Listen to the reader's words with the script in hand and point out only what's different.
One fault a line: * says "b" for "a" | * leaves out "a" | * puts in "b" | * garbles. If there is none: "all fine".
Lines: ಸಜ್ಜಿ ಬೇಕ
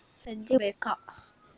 all fine